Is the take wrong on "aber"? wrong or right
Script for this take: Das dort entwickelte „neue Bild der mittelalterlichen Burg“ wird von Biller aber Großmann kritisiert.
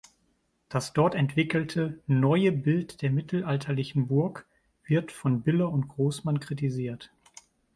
wrong